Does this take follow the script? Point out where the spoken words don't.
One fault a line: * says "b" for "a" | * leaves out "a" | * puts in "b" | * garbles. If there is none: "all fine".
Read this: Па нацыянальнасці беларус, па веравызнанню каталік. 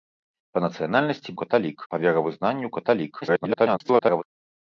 * says "каталік" for "беларус"
* garbles